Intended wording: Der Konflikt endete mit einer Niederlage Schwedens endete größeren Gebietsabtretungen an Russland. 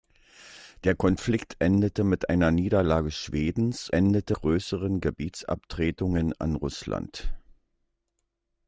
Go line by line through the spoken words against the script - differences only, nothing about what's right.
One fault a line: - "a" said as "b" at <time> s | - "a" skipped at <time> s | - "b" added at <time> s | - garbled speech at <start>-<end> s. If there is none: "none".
none